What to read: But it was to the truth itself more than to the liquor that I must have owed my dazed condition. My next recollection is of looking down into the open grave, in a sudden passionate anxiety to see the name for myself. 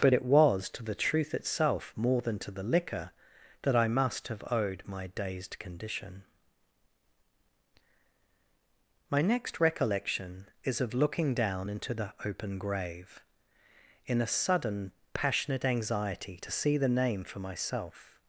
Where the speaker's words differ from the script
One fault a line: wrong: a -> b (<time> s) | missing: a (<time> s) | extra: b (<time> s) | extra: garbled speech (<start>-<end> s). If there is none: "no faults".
no faults